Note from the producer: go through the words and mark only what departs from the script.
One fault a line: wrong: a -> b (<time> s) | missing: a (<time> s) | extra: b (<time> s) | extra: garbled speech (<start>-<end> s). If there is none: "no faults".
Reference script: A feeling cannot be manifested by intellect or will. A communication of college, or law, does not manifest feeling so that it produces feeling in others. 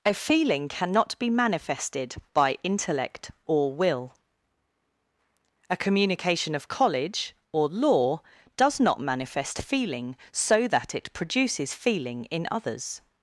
no faults